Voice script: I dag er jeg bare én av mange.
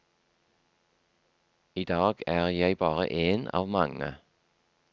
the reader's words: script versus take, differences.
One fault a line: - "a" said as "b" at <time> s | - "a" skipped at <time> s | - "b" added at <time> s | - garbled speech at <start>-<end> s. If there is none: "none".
none